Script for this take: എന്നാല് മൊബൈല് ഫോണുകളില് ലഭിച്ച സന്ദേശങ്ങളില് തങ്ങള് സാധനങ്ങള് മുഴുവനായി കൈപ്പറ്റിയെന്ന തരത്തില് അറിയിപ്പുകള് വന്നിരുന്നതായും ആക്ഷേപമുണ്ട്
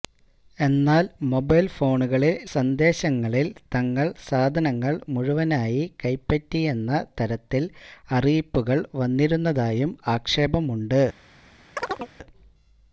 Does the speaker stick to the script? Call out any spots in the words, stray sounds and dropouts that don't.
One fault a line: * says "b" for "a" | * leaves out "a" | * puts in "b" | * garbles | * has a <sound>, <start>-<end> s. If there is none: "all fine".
* leaves out "ലഭിച്ച"
* has a chirp, 11.8-12.1 s